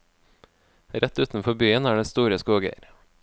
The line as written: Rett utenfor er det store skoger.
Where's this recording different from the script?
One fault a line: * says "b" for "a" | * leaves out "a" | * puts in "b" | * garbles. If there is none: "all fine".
* puts in "byen"